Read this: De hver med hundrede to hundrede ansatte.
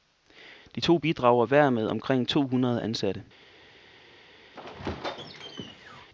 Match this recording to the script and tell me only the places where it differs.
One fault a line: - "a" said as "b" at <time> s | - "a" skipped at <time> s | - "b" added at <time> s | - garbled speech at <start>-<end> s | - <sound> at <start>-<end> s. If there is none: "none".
- "to bidrager" added at 0.8 s
- "hundrede" said as "omkring" at 1.9 s
- squeak at 4.5-6.1 s